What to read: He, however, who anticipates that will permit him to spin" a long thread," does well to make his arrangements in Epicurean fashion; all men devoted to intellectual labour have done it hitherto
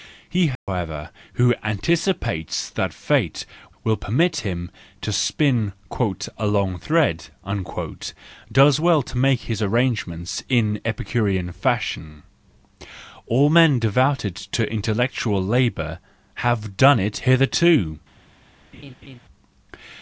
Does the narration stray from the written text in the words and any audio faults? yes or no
yes